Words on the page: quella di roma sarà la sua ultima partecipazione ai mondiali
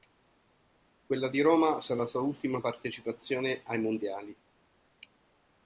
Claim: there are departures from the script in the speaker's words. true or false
false